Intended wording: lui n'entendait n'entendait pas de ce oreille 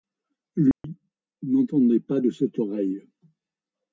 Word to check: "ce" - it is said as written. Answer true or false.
false